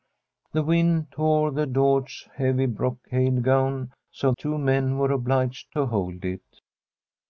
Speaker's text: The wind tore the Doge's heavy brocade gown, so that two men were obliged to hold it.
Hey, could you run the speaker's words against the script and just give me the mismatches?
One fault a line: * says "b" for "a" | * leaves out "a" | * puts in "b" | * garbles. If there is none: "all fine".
* leaves out "that"